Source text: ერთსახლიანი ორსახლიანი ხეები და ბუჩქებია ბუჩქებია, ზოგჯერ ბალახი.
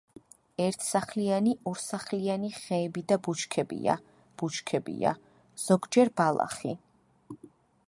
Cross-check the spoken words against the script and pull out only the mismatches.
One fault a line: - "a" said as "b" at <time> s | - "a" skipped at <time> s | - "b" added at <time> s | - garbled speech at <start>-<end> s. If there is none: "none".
none